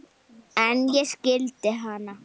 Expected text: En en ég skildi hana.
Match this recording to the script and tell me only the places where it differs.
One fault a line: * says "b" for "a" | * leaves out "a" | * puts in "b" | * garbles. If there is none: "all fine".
* leaves out "en"